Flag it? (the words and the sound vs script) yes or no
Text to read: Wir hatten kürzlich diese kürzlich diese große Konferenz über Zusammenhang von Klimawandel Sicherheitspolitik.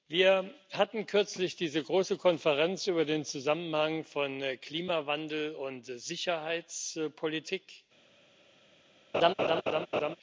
yes